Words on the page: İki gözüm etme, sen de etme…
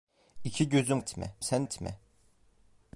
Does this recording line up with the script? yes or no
yes